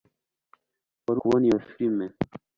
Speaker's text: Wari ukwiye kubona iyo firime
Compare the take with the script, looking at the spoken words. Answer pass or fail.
fail